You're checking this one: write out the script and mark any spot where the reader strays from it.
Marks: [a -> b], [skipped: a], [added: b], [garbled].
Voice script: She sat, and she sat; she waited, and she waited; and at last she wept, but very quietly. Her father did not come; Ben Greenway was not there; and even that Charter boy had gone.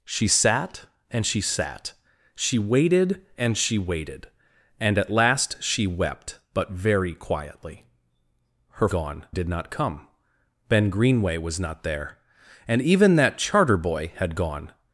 She sat, and she sat; she waited, and she waited; and at last she wept, but very quietly. Her [father -> gone] did not come; Ben Greenway was not there; and even that Charter boy had gone.